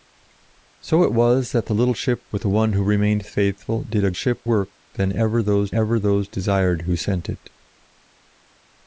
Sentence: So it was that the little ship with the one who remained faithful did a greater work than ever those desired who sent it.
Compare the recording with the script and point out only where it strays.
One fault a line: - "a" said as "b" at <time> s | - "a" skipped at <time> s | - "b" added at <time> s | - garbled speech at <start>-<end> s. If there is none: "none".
- "greater" said as "ship" at 4.1 s
- "ever those" added at 5.7 s